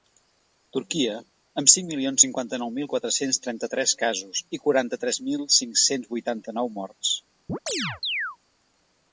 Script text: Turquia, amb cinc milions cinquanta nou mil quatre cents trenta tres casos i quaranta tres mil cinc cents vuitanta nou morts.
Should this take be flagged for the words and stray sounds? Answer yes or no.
yes